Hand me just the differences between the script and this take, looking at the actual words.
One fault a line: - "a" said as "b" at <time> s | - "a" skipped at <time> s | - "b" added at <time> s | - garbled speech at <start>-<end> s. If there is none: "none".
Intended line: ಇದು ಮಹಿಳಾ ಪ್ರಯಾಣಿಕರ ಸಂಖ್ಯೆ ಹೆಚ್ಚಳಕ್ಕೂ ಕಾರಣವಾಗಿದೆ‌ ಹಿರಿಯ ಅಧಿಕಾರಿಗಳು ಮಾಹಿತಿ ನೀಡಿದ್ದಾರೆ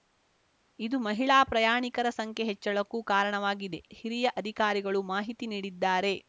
none